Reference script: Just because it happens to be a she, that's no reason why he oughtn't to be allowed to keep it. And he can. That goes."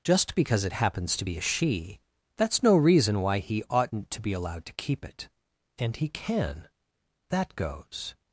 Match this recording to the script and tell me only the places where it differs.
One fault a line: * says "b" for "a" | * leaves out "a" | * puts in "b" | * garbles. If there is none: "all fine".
all fine